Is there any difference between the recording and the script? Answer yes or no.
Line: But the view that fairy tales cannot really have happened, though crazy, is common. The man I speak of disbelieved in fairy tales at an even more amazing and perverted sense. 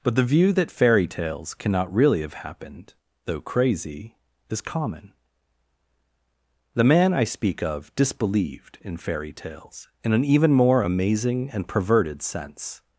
yes